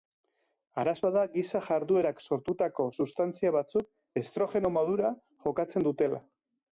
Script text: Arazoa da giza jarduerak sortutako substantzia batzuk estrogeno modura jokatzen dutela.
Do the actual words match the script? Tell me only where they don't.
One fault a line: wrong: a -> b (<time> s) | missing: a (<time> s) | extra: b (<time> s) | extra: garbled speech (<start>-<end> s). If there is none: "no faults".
no faults